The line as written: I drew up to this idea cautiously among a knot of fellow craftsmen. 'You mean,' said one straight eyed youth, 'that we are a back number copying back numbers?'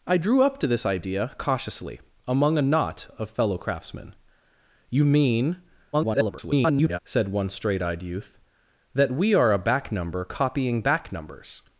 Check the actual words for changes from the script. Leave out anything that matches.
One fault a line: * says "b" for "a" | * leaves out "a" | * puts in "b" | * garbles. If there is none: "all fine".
* garbles